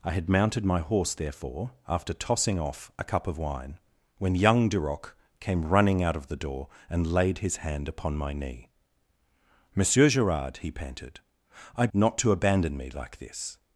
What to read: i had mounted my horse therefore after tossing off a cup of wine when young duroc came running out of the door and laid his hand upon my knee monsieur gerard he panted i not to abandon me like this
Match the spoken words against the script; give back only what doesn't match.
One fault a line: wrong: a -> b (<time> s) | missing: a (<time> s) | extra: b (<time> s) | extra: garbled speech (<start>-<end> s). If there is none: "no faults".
no faults